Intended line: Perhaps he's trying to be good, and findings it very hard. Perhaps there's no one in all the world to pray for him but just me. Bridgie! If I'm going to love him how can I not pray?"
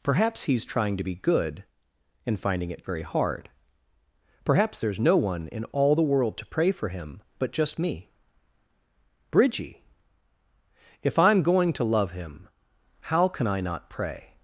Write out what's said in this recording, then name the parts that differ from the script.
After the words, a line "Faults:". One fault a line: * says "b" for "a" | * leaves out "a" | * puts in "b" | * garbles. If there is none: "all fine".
Perhaps he's trying to be good, and finding it very hard. Perhaps there's no one in all the world to pray for him but just me. Bridgie! If I'm going to love him how can I not pray?"
Faults:
* says "finding" for "findings"